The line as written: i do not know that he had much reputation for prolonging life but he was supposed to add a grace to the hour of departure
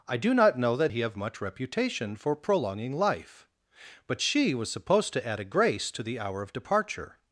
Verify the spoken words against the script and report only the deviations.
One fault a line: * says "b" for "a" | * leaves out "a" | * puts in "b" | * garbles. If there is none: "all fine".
* says "have" for "had"
* says "she" for "he"